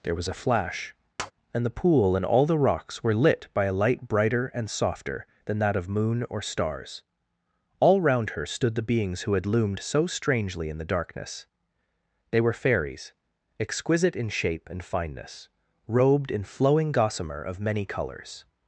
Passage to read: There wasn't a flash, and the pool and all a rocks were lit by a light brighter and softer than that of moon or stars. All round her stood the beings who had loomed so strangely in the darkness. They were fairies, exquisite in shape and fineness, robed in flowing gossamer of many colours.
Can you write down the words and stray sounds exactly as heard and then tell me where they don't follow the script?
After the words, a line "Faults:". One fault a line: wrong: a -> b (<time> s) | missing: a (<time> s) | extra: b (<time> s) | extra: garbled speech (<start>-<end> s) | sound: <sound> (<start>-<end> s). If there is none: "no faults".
There was a flash, and the pool and all the rocks were lit by a light brighter and softer than that of moon or stars. All round her stood the beings who had loomed so strangely in the darkness. They were fairies, exquisite in shape and fineness, robed in flowing gossamer of many colours.
Faults:
wrong: wasn't -> was (0.1 s)
sound: tap (1.2-1.3 s)
wrong: a -> the (2.5 s)